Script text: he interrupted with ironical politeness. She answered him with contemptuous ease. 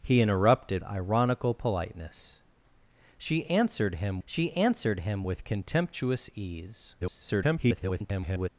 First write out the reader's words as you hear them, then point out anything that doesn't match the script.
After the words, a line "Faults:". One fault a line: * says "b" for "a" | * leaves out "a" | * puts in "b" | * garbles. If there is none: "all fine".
he interrupted ironical politeness. She answered him she answered him with contemptuous ease. [garbled]
Faults:
* leaves out "with"
* puts in "she answered him"
* garbles